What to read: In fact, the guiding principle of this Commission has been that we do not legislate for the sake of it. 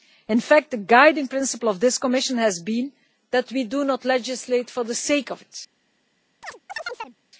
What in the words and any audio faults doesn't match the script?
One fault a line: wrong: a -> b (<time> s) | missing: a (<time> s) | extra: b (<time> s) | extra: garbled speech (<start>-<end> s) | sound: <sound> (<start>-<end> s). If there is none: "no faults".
sound: chirp (6.4-7.2 s)